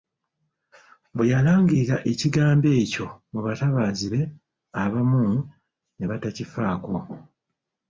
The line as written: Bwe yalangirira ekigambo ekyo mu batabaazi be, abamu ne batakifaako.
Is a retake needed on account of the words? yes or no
no